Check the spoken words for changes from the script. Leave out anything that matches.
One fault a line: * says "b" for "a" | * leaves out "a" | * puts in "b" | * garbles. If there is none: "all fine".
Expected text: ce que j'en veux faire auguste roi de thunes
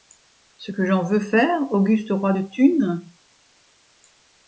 all fine